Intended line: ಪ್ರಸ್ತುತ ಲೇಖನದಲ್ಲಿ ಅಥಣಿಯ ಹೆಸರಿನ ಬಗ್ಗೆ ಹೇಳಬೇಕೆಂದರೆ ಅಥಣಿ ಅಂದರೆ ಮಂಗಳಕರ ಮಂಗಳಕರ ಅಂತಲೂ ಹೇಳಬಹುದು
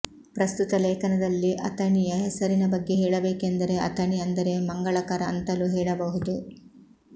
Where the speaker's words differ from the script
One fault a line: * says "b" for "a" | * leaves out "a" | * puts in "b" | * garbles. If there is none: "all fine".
* leaves out "ಮಂಗಳಕರ"